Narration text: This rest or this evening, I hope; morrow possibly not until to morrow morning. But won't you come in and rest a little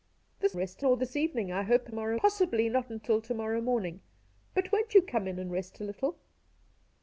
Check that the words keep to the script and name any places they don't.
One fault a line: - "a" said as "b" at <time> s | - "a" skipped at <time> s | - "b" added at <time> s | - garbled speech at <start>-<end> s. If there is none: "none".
none